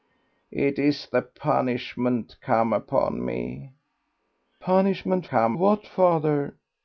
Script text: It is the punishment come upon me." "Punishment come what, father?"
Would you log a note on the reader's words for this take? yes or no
no